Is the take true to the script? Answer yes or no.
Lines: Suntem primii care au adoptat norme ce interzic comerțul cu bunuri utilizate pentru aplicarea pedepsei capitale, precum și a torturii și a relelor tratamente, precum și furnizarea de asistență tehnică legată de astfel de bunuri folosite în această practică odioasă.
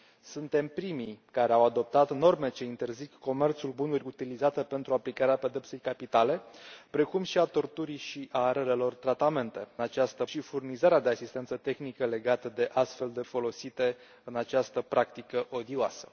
no